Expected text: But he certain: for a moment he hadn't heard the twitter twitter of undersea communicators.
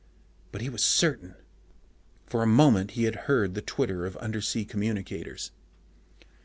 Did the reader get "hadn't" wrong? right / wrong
wrong